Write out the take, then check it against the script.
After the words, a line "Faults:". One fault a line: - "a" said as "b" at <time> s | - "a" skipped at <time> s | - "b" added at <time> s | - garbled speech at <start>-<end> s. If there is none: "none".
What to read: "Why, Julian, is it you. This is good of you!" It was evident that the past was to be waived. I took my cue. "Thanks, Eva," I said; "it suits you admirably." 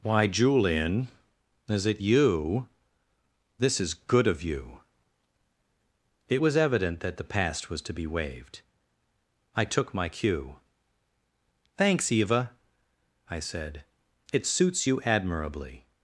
"Why, Julian, is it you. This is good of you!" It was evident that the past was to be waived. I took my cue. "Thanks, Eva," I said; "it suits you admirably."
Faults:
none